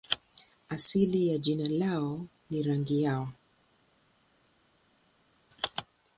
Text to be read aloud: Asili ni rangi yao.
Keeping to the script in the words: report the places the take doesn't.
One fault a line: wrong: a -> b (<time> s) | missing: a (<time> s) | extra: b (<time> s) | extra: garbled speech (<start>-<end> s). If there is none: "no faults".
extra: ya jina lao (1.3 s)